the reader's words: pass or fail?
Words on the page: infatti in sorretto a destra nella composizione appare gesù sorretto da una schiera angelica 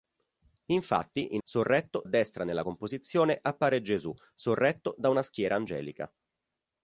pass